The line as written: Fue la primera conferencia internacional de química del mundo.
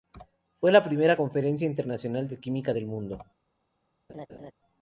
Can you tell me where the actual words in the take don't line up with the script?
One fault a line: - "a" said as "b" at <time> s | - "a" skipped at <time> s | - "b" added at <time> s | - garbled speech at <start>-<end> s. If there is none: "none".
none